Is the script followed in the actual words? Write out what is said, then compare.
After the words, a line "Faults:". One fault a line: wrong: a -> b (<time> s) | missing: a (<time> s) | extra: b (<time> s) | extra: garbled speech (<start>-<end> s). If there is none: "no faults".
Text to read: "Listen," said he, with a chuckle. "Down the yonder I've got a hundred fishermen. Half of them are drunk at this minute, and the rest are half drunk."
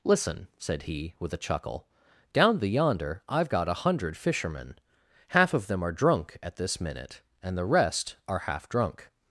"Listen," said he, with a chuckle. "Down the yonder I've got a hundred fishermen. Half of them are drunk at this minute, and the rest are half drunk."
Faults:
no faults